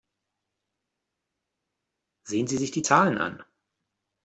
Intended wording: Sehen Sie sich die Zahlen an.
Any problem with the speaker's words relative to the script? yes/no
no